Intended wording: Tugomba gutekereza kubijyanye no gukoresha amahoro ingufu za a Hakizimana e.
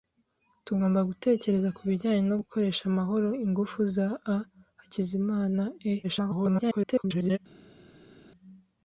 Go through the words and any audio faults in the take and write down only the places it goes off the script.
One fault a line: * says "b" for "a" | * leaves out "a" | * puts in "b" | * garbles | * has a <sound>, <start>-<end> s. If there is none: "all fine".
* garbles